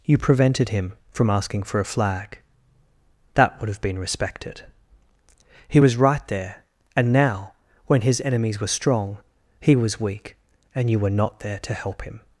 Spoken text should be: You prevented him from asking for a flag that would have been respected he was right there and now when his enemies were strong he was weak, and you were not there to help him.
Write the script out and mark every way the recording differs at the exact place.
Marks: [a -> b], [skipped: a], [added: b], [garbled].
You prevented him from asking for a flag that would have been respected he was right there and now when his enemies were strong he was weak, and you were not there to help him.